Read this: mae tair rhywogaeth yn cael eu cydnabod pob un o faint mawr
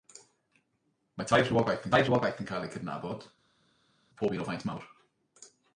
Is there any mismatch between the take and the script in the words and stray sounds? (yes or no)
yes